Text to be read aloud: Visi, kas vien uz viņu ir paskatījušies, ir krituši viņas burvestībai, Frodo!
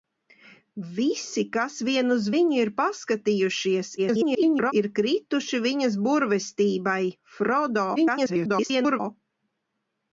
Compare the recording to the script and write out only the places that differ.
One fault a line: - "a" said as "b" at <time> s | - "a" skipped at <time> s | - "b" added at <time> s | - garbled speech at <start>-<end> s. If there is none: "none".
- garbled speech at 4.0-4.7 s
- garbled speech at 8.0-9.0 s